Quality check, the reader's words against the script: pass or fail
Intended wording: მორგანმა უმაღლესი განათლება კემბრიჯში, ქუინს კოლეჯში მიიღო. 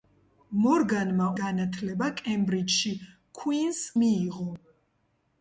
fail